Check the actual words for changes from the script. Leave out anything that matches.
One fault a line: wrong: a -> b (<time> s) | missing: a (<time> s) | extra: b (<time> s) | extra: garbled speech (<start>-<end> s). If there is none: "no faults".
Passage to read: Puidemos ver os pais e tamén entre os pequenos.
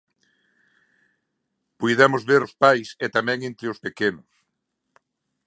no faults